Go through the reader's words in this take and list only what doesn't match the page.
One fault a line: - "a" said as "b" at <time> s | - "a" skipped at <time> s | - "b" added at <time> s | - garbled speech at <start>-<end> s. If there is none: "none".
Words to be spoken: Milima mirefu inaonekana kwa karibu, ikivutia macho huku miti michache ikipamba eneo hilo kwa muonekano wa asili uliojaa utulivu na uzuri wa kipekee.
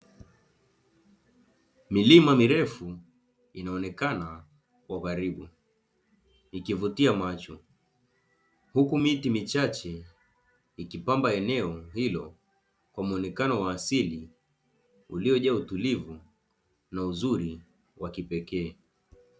none